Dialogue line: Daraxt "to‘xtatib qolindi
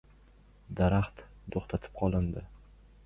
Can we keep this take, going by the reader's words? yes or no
yes